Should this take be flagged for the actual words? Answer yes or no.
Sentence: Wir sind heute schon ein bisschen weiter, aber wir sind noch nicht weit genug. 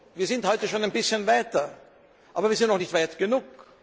no